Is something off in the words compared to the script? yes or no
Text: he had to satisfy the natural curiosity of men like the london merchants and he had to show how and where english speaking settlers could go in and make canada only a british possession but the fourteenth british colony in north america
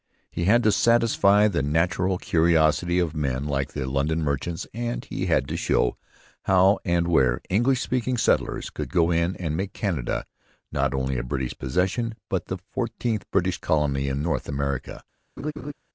yes